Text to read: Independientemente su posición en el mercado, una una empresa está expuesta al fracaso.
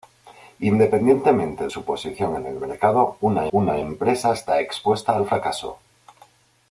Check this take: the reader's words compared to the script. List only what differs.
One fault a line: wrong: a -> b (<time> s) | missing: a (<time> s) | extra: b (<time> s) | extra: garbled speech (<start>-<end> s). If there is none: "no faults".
no faults